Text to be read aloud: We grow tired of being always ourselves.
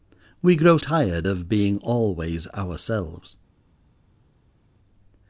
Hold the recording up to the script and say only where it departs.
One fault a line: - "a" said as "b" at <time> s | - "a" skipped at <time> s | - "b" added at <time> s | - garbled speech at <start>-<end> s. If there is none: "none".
none